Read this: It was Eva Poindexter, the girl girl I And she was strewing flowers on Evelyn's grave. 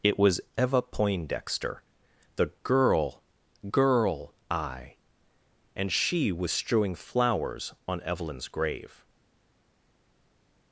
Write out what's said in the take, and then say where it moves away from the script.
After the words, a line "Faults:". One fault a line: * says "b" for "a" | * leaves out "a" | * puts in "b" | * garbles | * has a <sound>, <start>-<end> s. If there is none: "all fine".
It was Eva Poindexter, the girl girl I And she was strewing flowers on Evelyn's grave.
Faults:
all fine